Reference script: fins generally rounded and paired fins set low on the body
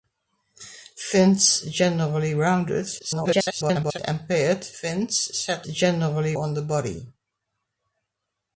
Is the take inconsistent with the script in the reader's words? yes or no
yes